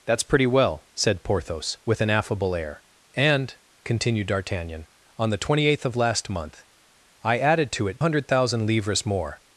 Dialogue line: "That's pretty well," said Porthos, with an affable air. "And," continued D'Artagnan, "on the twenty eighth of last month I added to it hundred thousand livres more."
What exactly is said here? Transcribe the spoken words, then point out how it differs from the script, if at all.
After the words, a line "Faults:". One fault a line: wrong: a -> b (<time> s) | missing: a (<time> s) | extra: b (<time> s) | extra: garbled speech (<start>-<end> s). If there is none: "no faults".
"That's pretty well," said Porthos, with an affable air. "And," continued D'Artagnan, "on the twenty eighth of last month I added to it hundred thousand livres more."
Faults:
no faults